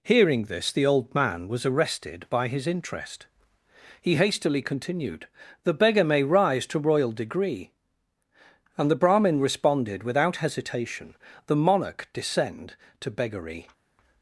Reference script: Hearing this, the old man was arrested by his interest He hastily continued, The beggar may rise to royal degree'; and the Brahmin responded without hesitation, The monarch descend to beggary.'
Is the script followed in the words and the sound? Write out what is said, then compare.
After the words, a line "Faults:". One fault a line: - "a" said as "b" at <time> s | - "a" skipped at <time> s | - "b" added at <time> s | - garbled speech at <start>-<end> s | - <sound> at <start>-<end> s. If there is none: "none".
Hearing this, the old man was arrested by his interest He hastily continued, The beggar may rise to royal degree'; and the Brahmin responded without hesitation, The monarch descend to beggary.'
Faults:
none